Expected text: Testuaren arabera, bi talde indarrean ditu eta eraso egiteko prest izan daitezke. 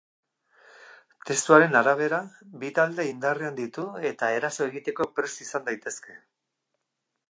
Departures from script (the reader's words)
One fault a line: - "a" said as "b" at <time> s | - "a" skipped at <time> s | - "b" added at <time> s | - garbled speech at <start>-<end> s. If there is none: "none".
none